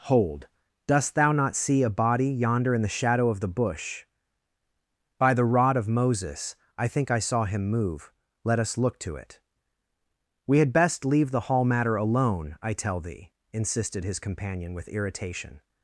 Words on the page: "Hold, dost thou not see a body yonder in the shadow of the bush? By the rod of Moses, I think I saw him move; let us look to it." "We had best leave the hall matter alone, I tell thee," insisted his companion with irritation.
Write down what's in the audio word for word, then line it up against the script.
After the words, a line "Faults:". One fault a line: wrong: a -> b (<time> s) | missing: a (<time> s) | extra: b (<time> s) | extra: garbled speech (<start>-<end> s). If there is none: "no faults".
"Hold, dost thou not see a body yonder in the shadow of the bush? By the rod of Moses, I think I saw him move; let us look to it." "We had best leave the hall matter alone, I tell thee," insisted his companion with irritation.
Faults:
no faults